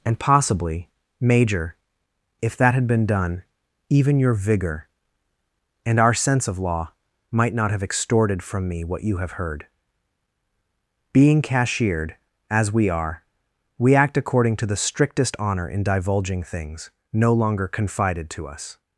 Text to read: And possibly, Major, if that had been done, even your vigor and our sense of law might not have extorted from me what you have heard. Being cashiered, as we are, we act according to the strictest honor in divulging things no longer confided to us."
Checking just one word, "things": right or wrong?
right